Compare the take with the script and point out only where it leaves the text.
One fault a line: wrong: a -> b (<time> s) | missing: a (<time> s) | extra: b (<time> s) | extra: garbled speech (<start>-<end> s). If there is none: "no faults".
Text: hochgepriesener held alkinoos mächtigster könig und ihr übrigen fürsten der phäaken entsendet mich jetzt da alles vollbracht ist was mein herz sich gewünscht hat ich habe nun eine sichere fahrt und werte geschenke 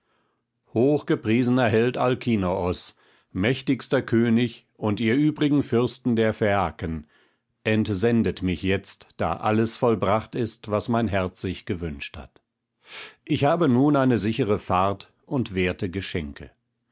no faults